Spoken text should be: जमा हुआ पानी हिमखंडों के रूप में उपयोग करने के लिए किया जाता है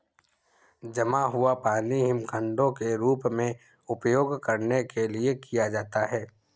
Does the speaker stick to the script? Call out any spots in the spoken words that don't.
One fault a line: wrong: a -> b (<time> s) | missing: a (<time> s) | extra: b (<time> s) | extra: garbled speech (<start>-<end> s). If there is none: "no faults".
no faults